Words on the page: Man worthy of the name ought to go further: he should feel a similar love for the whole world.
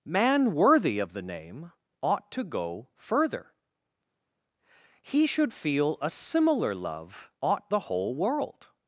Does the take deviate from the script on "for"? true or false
true